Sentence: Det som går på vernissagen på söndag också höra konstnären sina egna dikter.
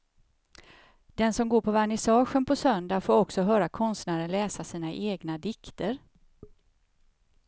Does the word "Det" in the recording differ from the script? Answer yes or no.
yes